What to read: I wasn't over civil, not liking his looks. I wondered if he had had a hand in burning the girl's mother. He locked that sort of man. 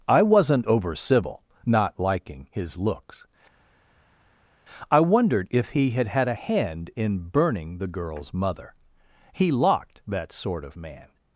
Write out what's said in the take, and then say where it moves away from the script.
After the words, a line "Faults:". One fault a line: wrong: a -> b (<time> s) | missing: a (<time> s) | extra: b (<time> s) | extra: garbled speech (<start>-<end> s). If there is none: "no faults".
I wasn't over civil, not liking his looks. I wondered if he had had a hand in burning the girl's mother. He locked that sort of man.
Faults:
no faults